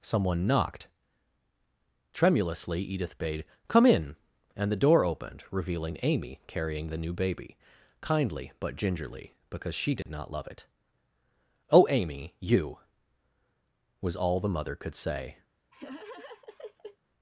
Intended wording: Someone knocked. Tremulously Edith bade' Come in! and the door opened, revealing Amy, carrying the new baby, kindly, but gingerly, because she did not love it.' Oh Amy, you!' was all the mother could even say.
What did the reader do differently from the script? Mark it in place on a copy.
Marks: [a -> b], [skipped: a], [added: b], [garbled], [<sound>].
Someone knocked. Tremulously Edith bade' Come in! and the door opened, revealing Amy, carrying the new baby, kindly, but gingerly, because she did [dropout] not love it.' Oh Amy, you!' was all the mother could [skipped: even] say. [laugh]